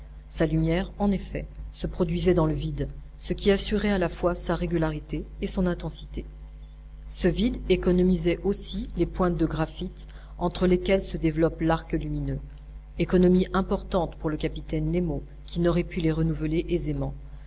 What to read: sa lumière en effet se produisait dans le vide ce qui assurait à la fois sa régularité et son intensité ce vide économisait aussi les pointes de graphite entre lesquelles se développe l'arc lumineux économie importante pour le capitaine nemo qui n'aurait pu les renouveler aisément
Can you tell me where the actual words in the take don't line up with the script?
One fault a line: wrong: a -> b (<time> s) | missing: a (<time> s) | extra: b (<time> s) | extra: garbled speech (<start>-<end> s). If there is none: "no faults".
no faults